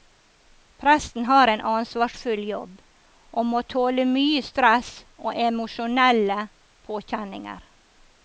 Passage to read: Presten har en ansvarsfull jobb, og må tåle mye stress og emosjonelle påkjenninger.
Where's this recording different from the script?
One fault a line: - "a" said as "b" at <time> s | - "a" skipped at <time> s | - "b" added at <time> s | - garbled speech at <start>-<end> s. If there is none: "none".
none